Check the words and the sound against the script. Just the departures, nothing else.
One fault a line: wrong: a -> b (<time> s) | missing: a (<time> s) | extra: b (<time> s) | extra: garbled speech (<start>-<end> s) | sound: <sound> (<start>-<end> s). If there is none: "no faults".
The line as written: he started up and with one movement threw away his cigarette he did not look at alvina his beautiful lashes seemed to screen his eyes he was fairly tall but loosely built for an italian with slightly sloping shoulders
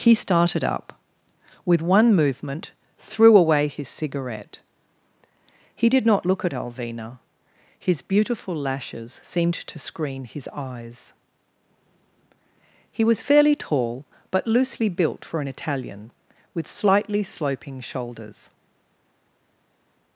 missing: and (1.0 s)